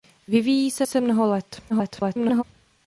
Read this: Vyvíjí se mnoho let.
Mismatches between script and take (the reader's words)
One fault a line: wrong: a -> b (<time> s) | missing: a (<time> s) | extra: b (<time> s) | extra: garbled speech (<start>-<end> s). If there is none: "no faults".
extra: se (0.9 s)
extra: garbled speech (1.7-2.4 s)